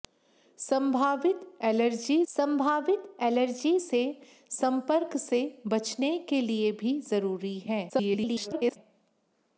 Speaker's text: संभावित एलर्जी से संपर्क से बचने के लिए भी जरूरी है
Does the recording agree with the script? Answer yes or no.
no